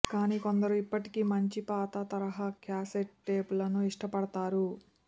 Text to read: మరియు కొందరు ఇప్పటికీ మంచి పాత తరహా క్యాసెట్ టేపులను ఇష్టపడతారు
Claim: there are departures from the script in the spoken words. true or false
true